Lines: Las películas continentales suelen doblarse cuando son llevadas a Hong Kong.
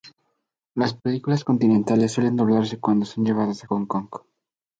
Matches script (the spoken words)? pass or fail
pass